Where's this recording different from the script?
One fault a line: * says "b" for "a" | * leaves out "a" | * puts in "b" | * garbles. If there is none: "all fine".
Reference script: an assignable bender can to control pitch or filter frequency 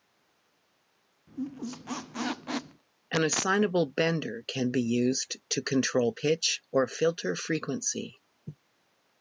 * puts in "be used"